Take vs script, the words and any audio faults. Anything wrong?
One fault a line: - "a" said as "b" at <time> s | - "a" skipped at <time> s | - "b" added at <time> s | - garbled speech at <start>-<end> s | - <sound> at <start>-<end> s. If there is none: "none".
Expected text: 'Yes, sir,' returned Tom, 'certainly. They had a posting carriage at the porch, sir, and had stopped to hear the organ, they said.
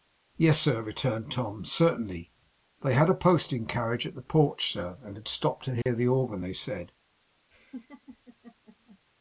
- dropout at 5.8-5.9 s
- laugh at 7.5-9.0 s